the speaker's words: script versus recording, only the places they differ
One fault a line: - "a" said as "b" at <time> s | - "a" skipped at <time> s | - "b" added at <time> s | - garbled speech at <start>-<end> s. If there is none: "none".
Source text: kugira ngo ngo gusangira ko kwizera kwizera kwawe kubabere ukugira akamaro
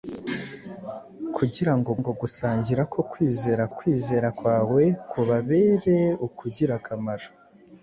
none